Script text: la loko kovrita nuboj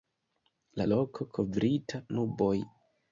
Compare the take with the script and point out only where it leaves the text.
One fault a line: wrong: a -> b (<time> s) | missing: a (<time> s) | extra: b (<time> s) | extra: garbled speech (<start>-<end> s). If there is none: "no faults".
no faults